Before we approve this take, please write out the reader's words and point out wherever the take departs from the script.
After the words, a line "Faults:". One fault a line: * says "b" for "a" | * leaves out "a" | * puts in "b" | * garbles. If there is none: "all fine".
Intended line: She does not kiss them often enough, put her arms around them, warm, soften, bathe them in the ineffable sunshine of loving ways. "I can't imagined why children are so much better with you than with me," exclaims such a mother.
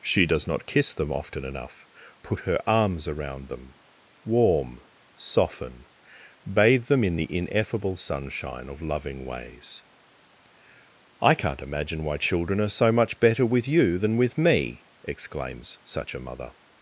She does not kiss them often enough, put her arms around them, warm, soften, bathe them in the ineffable sunshine of loving ways. "I can't imagine why children are so much better with you than with me," exclaims such a mother.
Faults:
* says "imagine" for "imagined"